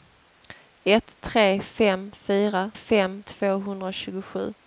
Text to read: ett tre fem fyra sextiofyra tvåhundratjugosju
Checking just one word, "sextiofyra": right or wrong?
wrong